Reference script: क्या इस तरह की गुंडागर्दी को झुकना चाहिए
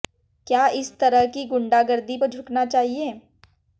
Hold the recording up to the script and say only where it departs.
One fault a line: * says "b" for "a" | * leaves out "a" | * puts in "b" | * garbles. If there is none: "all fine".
all fine